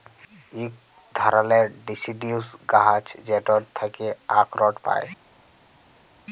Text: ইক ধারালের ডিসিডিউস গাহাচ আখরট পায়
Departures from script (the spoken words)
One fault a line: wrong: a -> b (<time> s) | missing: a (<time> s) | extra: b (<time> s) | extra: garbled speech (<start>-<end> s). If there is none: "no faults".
extra: যেটর থ্যাকে (3.3 s)